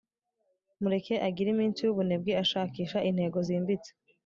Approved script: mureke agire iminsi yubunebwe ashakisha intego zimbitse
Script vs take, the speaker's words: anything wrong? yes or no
no